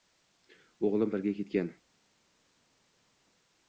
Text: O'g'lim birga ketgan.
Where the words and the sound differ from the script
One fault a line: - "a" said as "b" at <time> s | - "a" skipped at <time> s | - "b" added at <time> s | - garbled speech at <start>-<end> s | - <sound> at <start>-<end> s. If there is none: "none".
none